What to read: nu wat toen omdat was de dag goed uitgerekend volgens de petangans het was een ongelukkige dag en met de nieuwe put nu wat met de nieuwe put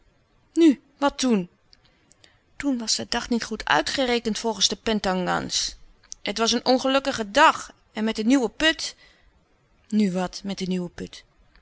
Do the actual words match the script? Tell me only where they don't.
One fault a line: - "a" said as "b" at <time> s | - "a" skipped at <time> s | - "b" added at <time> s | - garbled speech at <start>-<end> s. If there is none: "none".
- "omdat" said as "toen" at 2.5 s
- "niet" added at 3.3 s